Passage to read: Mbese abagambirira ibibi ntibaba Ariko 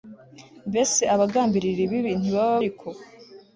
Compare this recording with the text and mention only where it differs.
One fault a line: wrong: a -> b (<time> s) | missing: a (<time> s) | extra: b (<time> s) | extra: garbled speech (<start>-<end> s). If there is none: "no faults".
no faults